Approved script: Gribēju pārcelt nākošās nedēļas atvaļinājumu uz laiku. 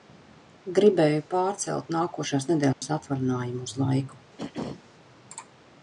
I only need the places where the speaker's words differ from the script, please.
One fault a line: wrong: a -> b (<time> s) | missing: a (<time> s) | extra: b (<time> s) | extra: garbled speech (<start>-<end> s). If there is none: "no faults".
no faults